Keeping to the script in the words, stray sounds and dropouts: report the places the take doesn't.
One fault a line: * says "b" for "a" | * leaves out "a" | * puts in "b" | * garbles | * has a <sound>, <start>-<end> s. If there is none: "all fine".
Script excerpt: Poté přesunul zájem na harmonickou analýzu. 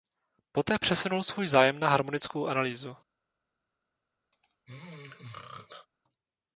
* puts in "svůj"
* has a throat clearing, 4.3-5.9 s